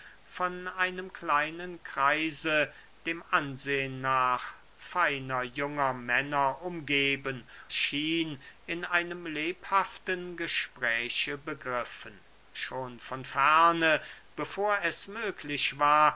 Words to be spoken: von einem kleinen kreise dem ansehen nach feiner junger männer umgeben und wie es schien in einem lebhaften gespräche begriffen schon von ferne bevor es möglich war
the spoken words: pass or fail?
fail